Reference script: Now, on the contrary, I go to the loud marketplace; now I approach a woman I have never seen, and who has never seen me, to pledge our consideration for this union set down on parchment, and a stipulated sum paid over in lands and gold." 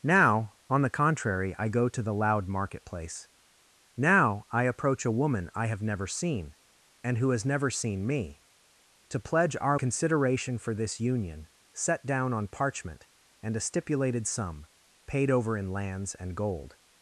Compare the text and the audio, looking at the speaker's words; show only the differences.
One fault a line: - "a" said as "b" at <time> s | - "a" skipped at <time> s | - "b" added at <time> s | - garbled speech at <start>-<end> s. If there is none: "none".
none